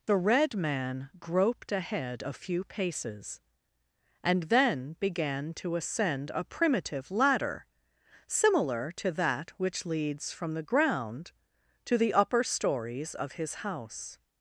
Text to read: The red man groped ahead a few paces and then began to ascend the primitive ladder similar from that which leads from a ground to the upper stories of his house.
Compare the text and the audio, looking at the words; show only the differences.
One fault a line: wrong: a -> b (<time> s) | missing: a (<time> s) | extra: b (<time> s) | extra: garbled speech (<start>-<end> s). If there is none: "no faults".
wrong: the -> a (6.3 s)
wrong: from -> to (8.9 s)
wrong: a -> the (10.5 s)